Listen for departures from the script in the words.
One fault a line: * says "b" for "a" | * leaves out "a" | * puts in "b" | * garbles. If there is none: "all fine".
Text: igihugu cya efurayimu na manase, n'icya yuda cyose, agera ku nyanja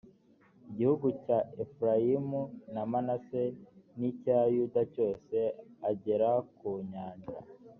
all fine